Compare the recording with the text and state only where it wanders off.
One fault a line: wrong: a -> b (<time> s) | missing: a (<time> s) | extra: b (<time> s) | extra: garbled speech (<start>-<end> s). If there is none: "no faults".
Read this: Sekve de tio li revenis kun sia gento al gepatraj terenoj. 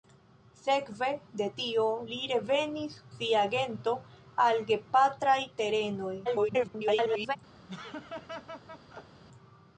missing: kun (2.9 s)
extra: garbled speech (6.2-7.4 s)